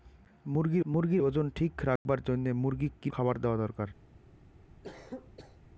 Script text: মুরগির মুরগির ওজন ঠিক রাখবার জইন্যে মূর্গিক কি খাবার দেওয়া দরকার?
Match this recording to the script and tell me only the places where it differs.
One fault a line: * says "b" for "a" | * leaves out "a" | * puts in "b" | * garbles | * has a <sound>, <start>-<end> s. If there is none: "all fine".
* has a dropout, 2.0-2.1 s
* has a cough, 4.8-5.6 s